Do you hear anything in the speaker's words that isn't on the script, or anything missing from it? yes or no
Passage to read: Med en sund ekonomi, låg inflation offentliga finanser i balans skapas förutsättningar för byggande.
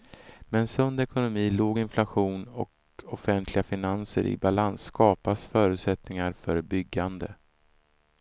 yes